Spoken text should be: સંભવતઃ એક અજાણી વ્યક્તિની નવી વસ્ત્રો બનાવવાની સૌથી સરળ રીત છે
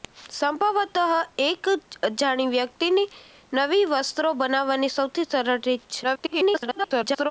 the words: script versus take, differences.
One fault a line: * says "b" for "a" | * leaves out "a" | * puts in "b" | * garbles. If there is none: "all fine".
* garbles